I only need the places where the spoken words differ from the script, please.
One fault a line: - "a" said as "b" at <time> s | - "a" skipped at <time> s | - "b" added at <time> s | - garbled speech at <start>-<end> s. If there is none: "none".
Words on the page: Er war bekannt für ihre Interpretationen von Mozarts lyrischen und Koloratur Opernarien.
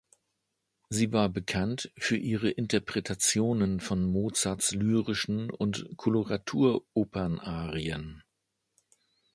- "Er" said as "Sie" at 0.9 s